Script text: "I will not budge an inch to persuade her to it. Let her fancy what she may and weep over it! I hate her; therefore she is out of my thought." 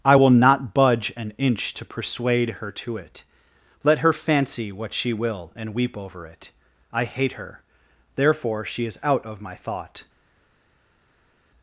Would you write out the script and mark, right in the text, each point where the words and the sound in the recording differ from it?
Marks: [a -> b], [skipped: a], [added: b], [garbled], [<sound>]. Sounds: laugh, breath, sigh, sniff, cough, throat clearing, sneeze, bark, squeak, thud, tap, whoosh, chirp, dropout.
"I will not budge an inch to persuade her to it. Let her fancy what she [may -> will] and weep over it! I hate her; therefore she is out of my thought."